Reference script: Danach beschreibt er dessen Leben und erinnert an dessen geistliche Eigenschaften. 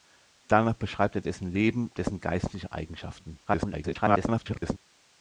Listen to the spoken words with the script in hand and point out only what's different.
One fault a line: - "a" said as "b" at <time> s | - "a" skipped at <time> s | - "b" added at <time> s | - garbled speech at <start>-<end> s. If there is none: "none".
- "und erinnert an" skipped at 1.9 s
- garbled speech at 3.5-4.8 s